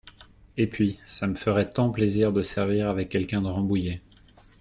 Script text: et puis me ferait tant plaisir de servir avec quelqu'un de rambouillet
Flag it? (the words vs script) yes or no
yes